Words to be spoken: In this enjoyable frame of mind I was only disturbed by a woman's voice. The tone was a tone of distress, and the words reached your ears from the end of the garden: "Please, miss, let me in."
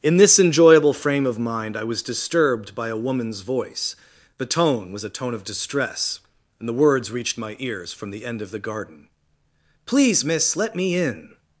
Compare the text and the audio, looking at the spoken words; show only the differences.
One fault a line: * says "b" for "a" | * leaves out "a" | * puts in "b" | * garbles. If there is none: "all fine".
* leaves out "only"
* says "my" for "your"